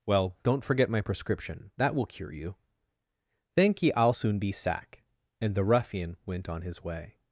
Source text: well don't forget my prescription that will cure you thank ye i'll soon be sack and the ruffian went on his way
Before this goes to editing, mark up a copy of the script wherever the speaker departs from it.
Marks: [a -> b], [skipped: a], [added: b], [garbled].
well don't forget my prescription that will cure you thank ye i'll soon be sack and the ruffian went on his way